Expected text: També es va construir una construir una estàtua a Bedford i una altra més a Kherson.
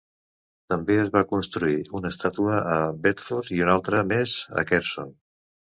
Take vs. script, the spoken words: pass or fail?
fail